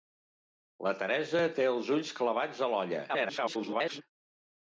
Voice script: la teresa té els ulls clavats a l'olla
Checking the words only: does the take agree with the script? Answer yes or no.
no